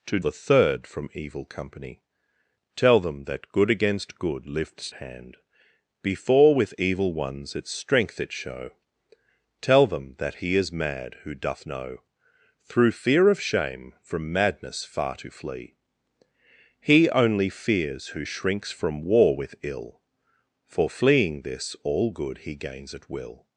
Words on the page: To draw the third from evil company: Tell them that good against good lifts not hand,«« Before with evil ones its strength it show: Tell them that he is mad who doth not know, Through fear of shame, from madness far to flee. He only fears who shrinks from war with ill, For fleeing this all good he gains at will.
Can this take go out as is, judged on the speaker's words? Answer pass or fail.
fail